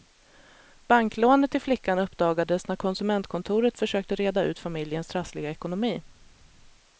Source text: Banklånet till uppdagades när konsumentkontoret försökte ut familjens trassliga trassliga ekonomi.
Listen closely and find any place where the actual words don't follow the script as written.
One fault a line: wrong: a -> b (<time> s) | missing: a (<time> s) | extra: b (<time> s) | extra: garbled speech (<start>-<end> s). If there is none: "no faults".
extra: flickan (1.6 s)
extra: reda (4.2 s)
missing: trassliga (5.5 s)